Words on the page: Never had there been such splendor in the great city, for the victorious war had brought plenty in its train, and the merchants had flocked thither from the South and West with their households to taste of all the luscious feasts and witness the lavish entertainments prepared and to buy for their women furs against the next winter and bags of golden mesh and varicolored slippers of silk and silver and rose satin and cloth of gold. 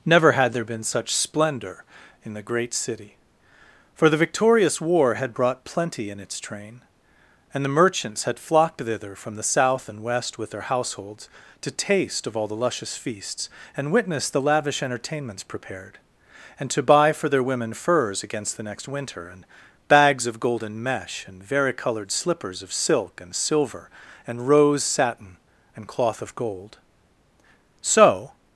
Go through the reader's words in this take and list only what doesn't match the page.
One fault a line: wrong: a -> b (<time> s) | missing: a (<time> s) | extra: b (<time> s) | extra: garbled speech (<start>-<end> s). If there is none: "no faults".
extra: So (27.8 s)